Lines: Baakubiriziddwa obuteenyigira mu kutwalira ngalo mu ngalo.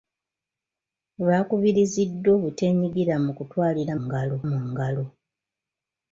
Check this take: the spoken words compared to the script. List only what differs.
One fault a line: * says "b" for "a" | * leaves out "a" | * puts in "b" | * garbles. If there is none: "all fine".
all fine